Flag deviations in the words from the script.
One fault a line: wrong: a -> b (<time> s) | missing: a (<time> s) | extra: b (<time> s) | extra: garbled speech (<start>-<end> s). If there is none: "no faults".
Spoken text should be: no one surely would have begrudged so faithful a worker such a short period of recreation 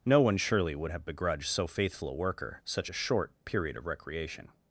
no faults